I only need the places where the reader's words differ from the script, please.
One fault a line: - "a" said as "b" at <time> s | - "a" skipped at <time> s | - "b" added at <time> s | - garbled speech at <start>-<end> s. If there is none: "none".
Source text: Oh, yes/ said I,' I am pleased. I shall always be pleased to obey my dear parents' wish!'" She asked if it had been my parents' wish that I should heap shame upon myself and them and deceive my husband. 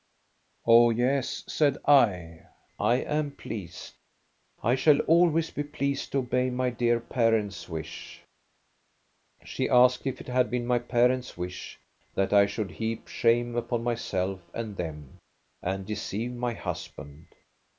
none